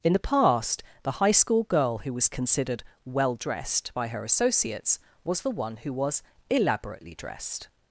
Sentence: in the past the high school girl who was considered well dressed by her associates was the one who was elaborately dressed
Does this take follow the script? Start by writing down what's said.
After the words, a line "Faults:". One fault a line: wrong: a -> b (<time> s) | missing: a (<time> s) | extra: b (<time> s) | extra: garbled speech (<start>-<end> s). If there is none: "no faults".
in the past the high school girl who was considered well dressed by her associates was the one who was elaborately dressed
Faults:
no faults